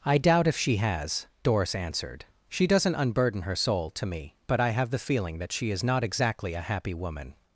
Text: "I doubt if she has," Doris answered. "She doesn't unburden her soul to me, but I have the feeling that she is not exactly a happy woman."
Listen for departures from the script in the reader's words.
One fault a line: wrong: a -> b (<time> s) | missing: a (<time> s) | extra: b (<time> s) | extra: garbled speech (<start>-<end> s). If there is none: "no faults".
no faults